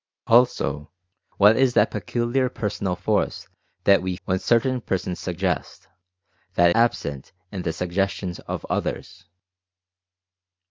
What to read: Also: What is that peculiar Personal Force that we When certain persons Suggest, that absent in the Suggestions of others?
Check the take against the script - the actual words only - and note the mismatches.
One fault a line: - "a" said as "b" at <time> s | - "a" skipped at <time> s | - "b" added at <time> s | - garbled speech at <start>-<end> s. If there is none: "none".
none